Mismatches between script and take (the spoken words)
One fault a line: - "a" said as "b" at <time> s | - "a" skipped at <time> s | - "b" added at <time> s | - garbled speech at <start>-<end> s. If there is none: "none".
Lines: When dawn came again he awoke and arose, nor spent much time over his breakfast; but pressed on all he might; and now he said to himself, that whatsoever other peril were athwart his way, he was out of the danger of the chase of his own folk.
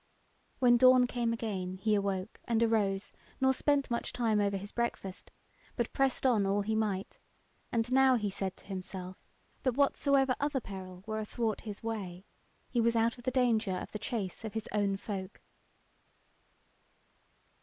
none